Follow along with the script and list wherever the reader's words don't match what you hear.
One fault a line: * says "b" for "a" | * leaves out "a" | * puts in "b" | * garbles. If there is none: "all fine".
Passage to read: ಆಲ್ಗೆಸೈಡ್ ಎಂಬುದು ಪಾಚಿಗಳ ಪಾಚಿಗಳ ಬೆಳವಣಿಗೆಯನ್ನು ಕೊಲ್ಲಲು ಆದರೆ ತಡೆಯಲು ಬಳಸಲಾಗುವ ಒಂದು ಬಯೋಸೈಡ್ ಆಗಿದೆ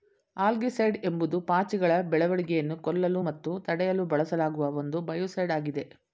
* leaves out "ಪಾಚಿಗಳ"
* says "ಮತ್ತು" for "ಆದರೆ"